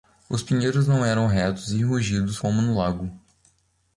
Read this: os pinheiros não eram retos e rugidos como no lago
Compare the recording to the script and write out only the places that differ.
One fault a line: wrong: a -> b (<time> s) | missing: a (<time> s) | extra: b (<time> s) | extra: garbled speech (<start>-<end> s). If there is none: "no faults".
no faults